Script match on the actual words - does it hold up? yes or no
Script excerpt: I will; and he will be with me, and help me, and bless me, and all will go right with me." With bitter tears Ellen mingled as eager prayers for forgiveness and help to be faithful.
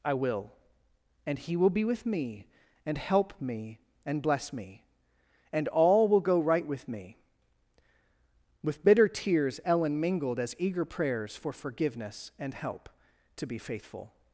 yes